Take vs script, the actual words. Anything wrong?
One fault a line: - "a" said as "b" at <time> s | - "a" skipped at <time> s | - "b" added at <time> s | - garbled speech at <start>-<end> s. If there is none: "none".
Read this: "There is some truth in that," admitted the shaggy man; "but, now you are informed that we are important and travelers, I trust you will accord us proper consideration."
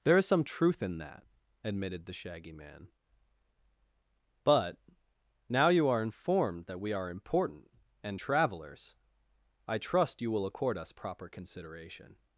none